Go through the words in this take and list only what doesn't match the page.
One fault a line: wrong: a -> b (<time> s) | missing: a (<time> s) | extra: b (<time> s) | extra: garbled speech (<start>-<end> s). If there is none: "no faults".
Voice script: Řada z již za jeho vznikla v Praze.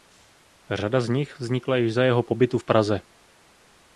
extra: nich vznikla (1.1 s)
wrong: vznikla -> pobytu (2.2 s)